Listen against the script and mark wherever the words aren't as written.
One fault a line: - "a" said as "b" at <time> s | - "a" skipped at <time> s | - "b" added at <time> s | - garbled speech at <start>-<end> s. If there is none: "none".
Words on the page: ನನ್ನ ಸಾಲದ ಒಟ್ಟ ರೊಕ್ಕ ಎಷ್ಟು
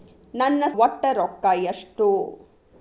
- "ಸಾಲದ" skipped at 0.6 s